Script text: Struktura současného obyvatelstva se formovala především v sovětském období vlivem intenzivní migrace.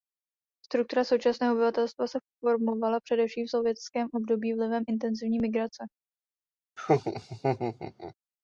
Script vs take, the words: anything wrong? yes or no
no